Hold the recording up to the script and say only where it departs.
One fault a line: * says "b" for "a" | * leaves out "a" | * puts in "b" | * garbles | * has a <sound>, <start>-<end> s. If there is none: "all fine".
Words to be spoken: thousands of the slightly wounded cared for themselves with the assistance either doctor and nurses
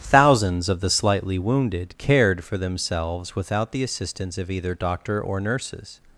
* says "without" for "with"
* puts in "of"
* says "or" for "and"